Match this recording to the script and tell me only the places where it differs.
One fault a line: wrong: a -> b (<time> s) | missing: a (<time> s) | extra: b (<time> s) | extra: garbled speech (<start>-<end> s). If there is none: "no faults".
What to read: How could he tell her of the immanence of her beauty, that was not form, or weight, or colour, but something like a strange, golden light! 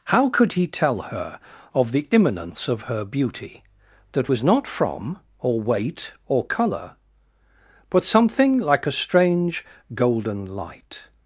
wrong: form -> from (4.7 s)